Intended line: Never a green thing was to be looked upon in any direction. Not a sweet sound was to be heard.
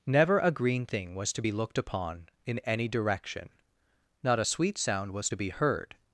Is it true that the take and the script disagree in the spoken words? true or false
false